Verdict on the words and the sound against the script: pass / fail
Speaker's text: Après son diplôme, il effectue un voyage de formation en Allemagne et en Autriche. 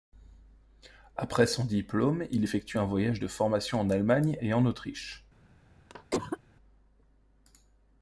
fail